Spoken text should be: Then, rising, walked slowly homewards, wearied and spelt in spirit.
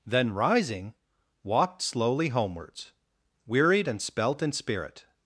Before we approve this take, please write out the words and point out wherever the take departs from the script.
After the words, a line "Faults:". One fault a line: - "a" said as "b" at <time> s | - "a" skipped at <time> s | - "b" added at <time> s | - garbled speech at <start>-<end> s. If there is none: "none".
Then, rising, walked slowly homewards, wearied and spelt in spirit.
Faults:
none